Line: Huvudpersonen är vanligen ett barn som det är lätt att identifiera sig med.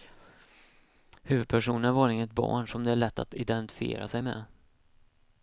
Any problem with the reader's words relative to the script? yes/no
no